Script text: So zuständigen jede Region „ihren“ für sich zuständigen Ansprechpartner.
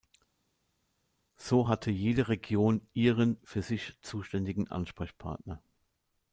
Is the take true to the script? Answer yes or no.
no